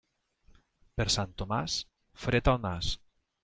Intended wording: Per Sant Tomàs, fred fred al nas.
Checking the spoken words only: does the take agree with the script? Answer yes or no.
no